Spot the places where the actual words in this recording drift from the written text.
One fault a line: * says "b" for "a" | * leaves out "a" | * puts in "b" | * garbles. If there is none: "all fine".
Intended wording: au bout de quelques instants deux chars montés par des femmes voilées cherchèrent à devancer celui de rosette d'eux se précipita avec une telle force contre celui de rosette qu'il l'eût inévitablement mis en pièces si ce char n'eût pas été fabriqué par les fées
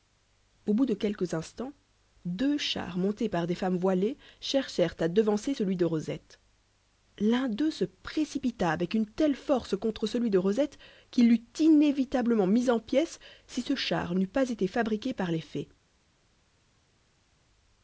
* puts in "l'un"